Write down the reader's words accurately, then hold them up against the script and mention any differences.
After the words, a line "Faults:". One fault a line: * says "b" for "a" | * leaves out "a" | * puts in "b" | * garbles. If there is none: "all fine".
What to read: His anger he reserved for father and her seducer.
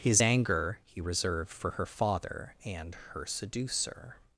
His anger he reserved for her father and her seducer.
Faults:
* puts in "her"